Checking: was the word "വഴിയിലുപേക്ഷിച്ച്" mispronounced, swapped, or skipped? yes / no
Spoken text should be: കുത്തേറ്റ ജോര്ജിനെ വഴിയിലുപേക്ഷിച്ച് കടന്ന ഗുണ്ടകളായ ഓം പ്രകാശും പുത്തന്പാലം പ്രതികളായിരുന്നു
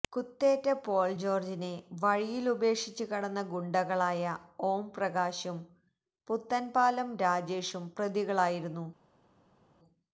no